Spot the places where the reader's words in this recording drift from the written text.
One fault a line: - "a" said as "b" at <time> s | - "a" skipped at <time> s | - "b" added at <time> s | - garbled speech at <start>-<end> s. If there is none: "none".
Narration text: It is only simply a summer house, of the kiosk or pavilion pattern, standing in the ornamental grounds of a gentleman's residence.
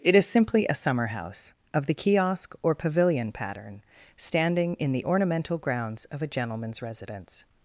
- "only" skipped at 0.2 s